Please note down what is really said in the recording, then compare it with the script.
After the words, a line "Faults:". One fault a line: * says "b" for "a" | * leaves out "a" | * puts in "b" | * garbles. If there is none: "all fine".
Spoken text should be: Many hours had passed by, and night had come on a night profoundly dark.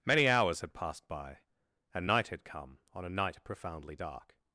Many hours had passed by, and night had come on a night profoundly dark.
Faults:
all fine